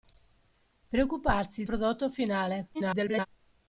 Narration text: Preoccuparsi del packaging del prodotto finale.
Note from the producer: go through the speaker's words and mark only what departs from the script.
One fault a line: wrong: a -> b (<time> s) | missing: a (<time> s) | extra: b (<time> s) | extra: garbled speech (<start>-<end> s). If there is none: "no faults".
missing: del packaging del (1.7 s)
extra: garbled speech (2.7-3.3 s)